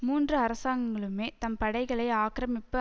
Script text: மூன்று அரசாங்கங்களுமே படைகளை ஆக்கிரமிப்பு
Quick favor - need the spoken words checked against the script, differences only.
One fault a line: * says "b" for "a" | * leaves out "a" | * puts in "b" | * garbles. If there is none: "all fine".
* puts in "தம்"